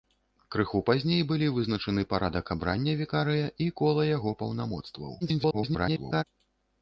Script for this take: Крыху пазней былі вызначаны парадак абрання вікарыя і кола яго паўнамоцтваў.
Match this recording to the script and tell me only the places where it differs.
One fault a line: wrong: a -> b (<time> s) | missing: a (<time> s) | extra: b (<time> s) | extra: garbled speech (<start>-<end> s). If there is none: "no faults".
extra: garbled speech (5.2-6.2 s)